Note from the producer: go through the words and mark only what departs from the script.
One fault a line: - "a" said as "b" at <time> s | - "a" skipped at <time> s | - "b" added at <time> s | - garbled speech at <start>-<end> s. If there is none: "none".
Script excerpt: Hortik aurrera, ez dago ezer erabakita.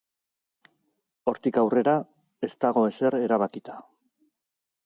none